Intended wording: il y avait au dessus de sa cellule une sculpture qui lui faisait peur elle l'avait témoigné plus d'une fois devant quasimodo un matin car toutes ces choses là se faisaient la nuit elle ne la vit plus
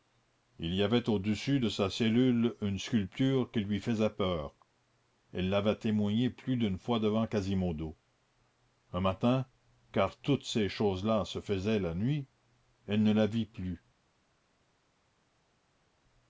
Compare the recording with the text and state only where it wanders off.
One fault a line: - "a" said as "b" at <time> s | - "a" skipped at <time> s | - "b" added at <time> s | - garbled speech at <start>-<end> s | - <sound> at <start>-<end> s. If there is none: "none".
none